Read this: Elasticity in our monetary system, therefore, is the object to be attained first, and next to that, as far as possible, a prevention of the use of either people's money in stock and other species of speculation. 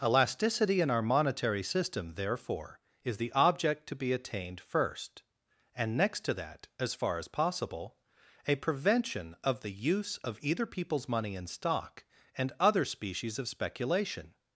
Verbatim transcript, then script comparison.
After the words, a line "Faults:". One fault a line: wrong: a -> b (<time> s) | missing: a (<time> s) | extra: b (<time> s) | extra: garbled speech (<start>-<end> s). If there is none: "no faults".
Elasticity in our monetary system, therefore, is the object to be attained first, and next to that, as far as possible, a prevention of the use of either people's money in stock and other species of speculation.
Faults:
no faults